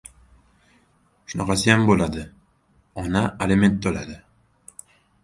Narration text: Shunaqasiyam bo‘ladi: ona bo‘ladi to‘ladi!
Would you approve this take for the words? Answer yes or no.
no